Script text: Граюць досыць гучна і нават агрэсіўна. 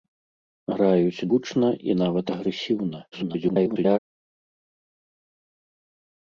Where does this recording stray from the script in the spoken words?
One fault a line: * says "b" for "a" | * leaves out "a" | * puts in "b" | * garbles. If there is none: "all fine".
* leaves out "досыць"
* garbles